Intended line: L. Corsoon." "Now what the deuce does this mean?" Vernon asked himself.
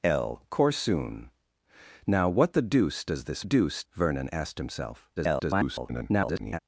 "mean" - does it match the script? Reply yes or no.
no